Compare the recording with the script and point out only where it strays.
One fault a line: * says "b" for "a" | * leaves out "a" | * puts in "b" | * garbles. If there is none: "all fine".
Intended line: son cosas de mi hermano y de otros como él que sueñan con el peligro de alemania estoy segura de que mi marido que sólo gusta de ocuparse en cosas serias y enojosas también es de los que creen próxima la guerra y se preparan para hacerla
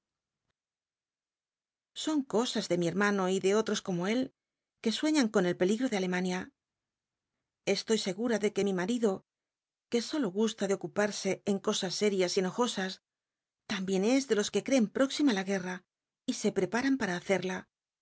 all fine